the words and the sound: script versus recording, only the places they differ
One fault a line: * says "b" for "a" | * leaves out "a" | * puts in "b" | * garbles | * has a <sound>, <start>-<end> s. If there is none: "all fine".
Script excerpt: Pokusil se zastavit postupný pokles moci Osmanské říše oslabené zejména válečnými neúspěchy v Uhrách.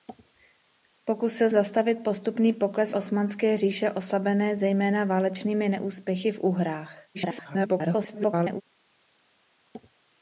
* leaves out "se"
* leaves out "moci"
* garbles